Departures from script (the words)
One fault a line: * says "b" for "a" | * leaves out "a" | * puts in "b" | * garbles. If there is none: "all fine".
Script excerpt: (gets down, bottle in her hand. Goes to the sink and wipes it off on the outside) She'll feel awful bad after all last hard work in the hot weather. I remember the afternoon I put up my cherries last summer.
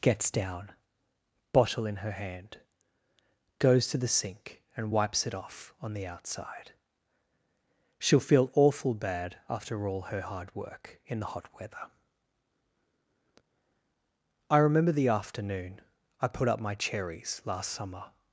* says "her" for "last"